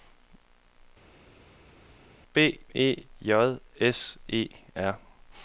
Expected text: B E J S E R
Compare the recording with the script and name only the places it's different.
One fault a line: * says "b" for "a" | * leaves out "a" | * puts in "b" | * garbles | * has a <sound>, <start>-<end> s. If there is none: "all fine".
all fine